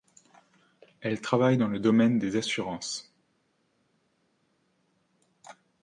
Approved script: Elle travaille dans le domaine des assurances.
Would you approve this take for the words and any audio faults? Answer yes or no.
yes